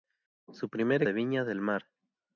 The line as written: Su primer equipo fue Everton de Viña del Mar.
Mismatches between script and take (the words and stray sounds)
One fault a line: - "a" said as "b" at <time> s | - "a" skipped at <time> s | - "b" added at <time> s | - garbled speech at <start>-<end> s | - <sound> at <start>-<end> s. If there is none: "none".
- "equipo fue Everton" skipped at 1.0 s